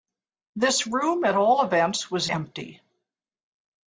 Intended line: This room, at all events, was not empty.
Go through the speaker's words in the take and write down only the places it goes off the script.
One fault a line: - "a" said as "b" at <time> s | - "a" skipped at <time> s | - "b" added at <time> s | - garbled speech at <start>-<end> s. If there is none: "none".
- "not" skipped at 2.3 s